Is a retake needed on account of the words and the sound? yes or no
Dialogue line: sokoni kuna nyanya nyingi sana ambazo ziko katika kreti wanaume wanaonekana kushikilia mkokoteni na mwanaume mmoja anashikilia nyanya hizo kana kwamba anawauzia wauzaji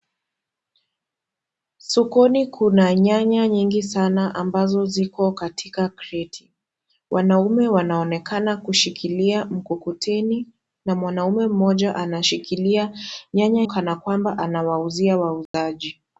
yes